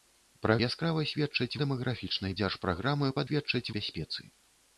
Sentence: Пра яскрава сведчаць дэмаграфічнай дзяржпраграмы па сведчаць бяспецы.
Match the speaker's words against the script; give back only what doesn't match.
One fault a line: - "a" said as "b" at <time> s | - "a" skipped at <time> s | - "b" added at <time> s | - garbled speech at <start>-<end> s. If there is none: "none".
none